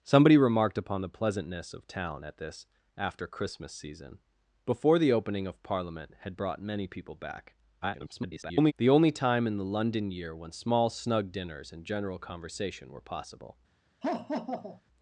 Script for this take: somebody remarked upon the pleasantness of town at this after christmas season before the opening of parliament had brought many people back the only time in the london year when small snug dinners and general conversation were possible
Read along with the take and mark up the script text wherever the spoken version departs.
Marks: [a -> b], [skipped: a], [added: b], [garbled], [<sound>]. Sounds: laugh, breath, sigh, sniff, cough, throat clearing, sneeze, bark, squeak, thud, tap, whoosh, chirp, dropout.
somebody remarked upon the pleasantness of town at this after christmas season before the opening of parliament had brought many people back [garbled] the only time in the london year when small snug dinners and general conversation were possible [laugh]